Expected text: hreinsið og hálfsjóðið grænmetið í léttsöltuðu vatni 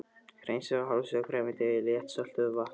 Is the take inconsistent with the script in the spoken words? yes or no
no